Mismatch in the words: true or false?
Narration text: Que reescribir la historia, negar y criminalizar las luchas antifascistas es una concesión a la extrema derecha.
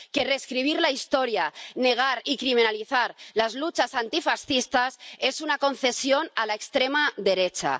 false